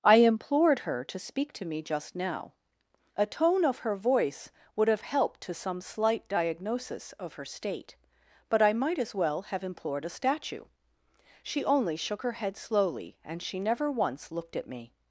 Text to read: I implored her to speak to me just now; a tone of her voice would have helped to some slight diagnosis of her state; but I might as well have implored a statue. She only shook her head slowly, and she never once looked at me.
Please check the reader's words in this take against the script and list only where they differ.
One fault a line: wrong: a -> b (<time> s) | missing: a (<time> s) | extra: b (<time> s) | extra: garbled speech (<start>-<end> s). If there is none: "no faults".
no faults